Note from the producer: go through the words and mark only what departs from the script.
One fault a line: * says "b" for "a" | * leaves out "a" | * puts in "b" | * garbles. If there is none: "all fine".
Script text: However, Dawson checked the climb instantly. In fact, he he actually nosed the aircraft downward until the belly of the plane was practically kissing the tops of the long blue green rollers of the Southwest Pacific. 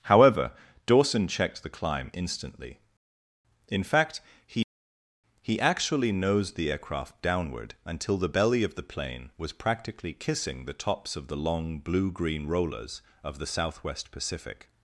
all fine